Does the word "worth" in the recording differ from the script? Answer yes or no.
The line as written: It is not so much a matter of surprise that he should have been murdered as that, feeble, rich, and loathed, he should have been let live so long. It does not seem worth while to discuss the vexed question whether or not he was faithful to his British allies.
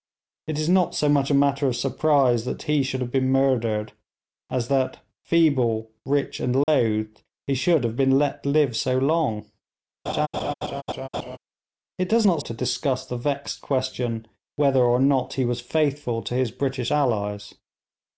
yes